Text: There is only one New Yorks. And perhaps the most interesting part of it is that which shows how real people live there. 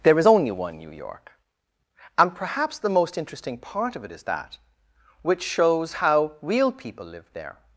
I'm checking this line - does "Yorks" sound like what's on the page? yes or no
no